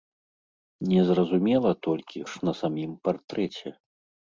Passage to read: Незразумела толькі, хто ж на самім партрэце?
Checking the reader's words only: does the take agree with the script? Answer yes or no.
no